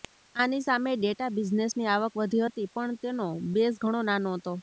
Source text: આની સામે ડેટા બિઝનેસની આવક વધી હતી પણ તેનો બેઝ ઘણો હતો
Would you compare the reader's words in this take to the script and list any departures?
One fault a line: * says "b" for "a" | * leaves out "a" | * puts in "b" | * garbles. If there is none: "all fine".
* puts in "નાનો"